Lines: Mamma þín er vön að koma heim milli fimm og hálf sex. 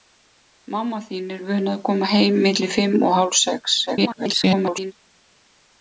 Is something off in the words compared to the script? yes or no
yes